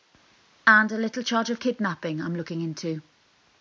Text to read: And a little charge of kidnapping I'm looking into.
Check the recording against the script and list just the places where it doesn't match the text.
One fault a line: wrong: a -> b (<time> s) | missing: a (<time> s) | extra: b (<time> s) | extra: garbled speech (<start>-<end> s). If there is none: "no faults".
no faults